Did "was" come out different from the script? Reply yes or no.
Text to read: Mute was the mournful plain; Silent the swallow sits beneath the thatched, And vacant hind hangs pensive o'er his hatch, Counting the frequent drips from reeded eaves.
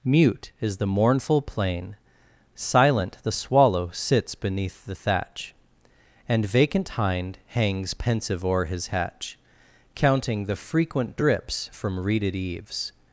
yes